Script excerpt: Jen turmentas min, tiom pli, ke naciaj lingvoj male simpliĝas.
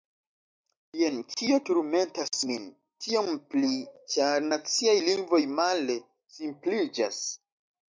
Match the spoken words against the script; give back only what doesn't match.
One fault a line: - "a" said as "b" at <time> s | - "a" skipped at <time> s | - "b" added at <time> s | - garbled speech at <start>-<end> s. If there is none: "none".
- "kio" added at 1.3 s
- "ke" said as "ĉar" at 4.2 s